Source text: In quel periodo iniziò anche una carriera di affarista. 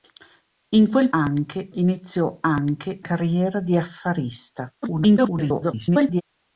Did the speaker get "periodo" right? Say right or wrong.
wrong